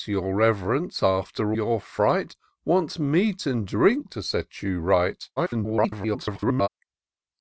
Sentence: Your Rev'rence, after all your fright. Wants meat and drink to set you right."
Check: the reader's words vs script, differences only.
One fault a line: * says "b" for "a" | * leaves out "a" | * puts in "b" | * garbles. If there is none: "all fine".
* leaves out "all"
* garbles